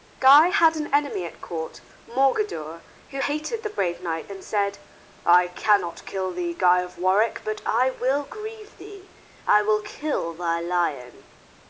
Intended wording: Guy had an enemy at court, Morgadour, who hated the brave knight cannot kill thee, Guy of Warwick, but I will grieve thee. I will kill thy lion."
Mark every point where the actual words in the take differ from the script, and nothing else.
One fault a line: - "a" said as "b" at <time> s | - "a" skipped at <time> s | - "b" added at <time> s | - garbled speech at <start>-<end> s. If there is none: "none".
- "and said I" added at 4.3 s